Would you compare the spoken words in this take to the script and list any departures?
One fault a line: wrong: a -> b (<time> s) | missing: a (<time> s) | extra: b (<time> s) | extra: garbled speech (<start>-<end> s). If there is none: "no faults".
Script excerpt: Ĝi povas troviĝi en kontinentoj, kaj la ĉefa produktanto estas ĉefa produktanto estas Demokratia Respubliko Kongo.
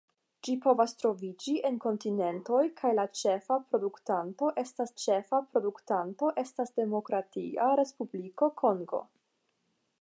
no faults